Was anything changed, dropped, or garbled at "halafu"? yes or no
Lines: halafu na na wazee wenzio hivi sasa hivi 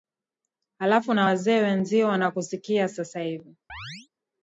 no